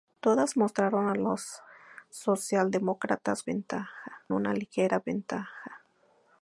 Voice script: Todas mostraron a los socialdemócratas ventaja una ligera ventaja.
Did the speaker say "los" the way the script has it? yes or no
yes